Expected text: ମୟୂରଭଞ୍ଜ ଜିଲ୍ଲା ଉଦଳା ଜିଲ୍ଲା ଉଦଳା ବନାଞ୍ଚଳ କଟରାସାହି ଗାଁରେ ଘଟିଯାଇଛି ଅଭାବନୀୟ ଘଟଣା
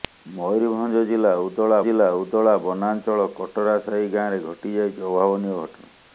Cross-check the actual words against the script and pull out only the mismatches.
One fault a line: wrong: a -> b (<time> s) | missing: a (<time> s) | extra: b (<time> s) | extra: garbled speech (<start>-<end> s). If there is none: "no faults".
no faults